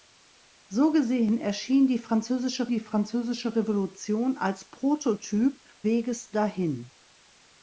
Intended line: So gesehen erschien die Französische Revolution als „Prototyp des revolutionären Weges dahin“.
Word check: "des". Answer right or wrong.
wrong